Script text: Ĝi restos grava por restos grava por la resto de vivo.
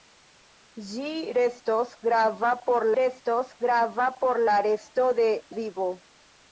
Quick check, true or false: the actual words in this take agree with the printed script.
true